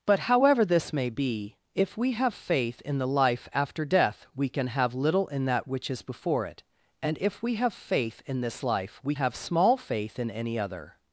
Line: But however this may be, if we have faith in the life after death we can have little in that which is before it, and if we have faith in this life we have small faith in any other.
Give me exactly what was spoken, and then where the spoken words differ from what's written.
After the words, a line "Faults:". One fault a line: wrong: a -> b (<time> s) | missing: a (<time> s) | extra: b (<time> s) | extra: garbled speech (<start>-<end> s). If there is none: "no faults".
But however this may be, if we have faith in the life after death we can have little in that which is before it, and if we have faith in this life we have small faith in any other.
Faults:
no faults